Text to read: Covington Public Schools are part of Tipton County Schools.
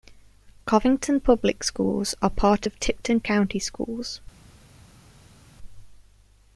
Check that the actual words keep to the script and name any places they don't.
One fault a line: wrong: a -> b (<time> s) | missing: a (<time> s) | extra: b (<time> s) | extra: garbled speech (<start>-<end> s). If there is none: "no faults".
no faults